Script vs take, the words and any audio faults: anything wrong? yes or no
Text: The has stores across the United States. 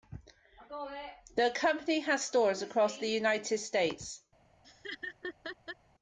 yes